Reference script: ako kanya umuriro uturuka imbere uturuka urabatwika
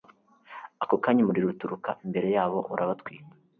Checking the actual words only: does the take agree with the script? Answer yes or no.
no